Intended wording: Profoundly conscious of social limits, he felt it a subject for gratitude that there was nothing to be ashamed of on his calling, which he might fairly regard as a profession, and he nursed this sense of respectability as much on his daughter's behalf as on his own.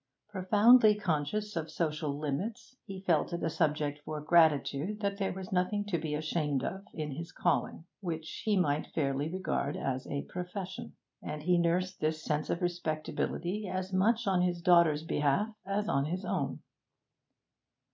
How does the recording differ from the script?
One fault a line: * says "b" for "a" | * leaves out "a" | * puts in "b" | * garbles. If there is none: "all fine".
* says "in" for "on"